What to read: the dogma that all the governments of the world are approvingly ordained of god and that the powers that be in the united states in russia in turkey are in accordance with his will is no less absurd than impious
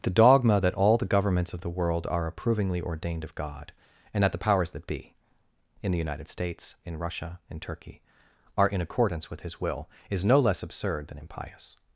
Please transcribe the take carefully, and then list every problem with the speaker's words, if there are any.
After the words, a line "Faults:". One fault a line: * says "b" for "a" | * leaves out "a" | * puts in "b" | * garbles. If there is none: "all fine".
the dogma that all the governments of the world are approvingly ordained of god and that the powers that be in the united states in russia in turkey are in accordance with his will is no less absurd than impious
Faults:
all fine